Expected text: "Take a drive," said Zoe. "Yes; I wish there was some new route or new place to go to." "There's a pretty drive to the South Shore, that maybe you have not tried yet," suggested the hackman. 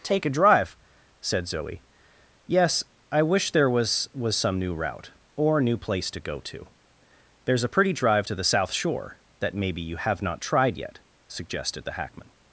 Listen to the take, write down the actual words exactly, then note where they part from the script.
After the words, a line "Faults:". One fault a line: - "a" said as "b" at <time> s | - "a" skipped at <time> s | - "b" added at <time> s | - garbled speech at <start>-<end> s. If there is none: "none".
"Take a drive," said Zoe. "Yes; I wish there was was some new route or new place to go to." "There's a pretty drive to the South Shore, that maybe you have not tried yet," suggested the hackman.
Faults:
- "was" added at 4.2 s